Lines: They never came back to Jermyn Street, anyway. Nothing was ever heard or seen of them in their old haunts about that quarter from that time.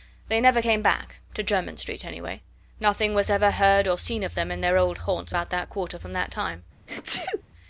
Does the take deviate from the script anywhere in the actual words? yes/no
no